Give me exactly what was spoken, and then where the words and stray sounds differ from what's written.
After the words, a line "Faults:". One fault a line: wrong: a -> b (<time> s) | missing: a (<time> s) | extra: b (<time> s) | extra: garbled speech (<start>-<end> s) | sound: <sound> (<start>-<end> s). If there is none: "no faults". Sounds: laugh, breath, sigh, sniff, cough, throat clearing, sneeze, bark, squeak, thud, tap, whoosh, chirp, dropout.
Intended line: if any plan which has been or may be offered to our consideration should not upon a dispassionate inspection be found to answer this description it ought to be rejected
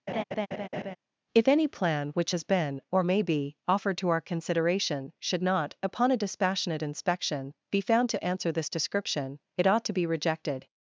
if any plan which has been or may be offered to our consideration should not upon a dispassionate inspection be found to answer this description it ought to be rejected
Faults:
sound: laugh (0.1-1.0 s)